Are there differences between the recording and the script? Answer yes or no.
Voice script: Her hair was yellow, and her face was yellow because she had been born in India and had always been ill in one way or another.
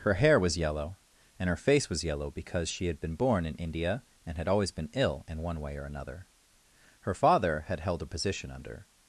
yes